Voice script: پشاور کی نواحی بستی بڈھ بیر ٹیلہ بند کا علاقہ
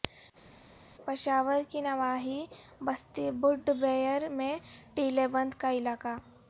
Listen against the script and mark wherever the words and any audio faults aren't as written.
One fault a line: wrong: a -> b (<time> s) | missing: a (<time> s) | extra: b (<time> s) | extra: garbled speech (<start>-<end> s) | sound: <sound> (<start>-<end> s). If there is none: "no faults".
extra: میں (4.3 s)